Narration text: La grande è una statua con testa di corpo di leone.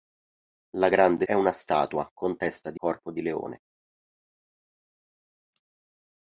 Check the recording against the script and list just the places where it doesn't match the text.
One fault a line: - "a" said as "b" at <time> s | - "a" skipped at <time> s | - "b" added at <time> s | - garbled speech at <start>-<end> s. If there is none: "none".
none